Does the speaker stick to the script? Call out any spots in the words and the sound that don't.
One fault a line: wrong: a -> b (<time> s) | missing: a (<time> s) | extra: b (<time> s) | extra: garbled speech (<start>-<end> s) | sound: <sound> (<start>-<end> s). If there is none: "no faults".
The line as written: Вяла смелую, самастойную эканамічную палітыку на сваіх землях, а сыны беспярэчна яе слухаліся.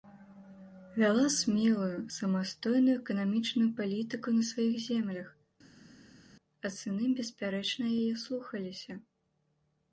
no faults